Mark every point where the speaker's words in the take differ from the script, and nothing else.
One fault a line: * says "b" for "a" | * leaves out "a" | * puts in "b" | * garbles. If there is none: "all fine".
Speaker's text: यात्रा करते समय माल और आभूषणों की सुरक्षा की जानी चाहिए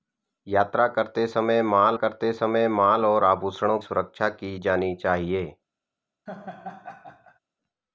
* puts in "करते समय माल"
* leaves out "की"